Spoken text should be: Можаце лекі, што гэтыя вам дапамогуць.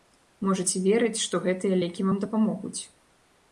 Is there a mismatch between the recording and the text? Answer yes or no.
yes